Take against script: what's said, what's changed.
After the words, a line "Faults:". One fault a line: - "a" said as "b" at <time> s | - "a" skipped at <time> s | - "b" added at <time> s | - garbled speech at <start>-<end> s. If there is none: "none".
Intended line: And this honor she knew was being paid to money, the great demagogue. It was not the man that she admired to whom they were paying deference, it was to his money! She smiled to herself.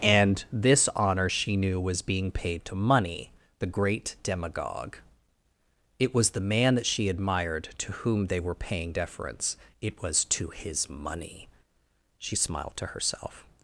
And this honor she knew was being paid to money, the great demagogue. It was the man that she admired to whom they were paying deference, it was to his money! She smiled to herself.
Faults:
- "not" skipped at 6.3 s